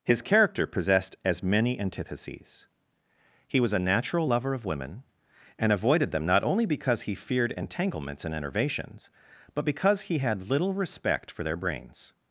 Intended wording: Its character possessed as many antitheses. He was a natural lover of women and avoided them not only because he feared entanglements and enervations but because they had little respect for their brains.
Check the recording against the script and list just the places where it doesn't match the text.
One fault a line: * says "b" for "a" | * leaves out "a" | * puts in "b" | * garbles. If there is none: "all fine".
* says "His" for "Its"
* says "he" for "they"